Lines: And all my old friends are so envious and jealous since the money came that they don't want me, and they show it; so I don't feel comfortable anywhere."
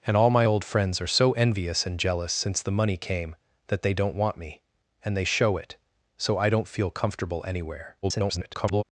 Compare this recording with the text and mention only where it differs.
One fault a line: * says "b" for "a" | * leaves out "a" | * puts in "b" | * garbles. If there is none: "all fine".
* garbles